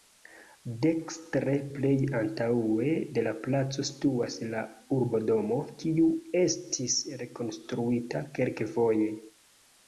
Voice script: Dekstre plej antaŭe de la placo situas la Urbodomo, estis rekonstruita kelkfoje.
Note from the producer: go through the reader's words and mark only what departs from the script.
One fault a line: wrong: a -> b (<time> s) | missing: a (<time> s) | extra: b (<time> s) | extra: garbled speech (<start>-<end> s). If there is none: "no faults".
extra: kiu (5.8 s)